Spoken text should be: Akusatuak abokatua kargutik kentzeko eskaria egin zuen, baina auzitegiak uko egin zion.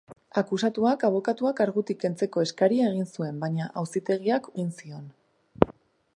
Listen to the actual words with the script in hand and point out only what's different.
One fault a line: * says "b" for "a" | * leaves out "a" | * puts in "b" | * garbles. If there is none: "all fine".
* leaves out "uko"